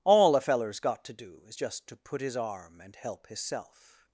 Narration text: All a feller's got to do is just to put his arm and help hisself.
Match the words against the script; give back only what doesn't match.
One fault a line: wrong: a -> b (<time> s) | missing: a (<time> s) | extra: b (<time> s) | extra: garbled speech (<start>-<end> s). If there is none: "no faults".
no faults